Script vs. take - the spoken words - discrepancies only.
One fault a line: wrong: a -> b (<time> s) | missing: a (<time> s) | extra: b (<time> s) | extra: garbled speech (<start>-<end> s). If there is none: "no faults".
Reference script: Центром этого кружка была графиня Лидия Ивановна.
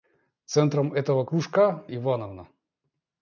missing: была графиня Лидия (1.8 s)